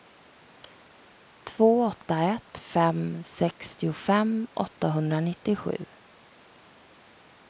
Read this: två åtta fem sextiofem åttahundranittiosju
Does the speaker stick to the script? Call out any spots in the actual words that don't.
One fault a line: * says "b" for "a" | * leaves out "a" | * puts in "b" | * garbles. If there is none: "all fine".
* puts in "ett"